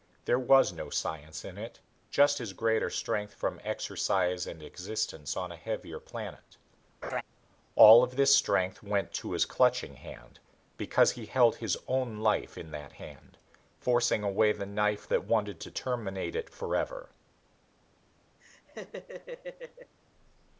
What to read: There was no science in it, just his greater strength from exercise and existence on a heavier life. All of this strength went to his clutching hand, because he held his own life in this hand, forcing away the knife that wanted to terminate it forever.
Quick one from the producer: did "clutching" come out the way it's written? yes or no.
yes